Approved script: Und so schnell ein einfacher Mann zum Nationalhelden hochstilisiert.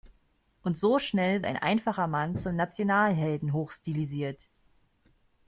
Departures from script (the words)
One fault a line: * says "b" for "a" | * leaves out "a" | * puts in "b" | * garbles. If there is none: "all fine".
all fine